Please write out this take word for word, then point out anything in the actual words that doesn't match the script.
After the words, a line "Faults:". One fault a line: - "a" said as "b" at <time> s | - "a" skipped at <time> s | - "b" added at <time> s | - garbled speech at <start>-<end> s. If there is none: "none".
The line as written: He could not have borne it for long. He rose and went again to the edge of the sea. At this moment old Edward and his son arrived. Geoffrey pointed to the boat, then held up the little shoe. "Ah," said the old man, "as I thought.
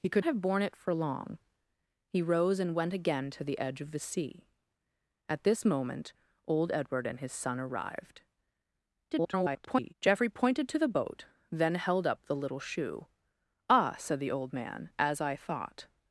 He could have borne it for long. He rose and went again to the edge of the sea. At this moment old Edward and his son arrived. [garbled] Geoffrey pointed to the boat, then held up the little shoe. "Ah," said the old man, "as I thought.
Faults:
- "not" skipped at 0.2 s
- garbled speech at 9.1-9.9 s